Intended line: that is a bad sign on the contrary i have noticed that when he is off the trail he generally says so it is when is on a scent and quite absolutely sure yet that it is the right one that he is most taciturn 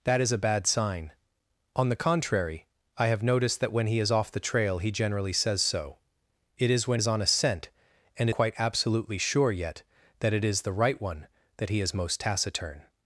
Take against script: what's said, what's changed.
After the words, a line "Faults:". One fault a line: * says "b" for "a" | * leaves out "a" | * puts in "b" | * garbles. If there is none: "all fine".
that is a bad sign on the contrary i have noticed that when he is off the trail he generally says so it is when is on a scent and quite absolutely sure yet that it is the right one that he is most taciturn
Faults:
all fine